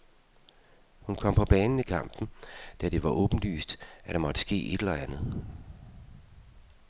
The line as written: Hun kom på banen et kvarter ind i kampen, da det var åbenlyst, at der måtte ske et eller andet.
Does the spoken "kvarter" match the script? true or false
false